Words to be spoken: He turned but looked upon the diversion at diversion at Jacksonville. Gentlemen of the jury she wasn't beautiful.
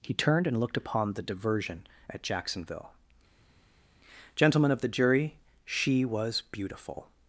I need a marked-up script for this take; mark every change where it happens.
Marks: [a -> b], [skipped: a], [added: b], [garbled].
He turned [but -> and] looked upon the diversion at [skipped: diversion at] Jacksonville. Gentlemen of the jury she [wasn't -> was] beautiful.